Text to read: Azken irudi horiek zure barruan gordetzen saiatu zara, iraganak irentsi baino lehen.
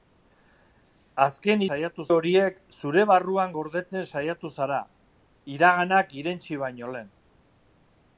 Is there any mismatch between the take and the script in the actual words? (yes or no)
yes